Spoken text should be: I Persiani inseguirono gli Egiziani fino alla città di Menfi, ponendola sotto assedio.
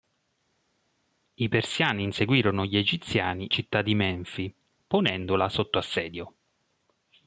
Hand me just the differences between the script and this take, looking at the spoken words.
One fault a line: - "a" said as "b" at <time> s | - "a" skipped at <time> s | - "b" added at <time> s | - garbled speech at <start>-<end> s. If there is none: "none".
- "fino alla" skipped at 3.5 s